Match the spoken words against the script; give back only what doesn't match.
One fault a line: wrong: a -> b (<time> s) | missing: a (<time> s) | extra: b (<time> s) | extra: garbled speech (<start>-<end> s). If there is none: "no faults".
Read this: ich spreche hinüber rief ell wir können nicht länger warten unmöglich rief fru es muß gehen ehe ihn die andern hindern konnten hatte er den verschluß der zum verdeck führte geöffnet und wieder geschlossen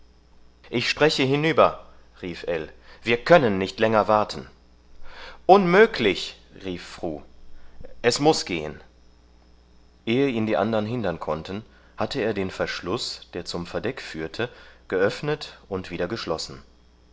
no faults